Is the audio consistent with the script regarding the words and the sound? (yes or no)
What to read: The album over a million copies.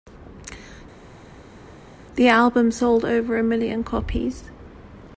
no